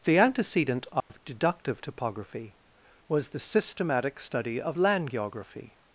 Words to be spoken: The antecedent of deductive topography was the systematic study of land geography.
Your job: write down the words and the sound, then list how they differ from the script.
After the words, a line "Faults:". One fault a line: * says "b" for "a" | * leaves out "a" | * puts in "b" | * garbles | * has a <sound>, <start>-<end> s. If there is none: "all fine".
The antecedent of deductive topography was the systematic study of land geography.
Faults:
* has a dropout, 1.0-1.1 s